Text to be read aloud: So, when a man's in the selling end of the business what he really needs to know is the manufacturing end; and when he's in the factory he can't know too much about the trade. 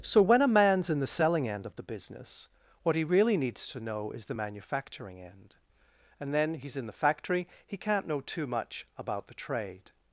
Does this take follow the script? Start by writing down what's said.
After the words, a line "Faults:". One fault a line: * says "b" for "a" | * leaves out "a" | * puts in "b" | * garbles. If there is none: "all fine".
So, when a man's in the selling end of the business what he really needs to know is the manufacturing end; and then he's in the factory he can't know too much about the trade.
Faults:
* says "then" for "when"